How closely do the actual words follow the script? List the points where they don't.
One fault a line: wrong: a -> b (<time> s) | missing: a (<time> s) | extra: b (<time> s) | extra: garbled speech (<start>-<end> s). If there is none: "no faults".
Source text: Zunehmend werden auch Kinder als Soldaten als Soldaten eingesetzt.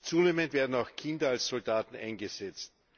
missing: als Soldaten (1.9 s)